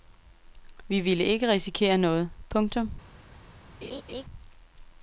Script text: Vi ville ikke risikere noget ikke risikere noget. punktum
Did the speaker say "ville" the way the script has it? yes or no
yes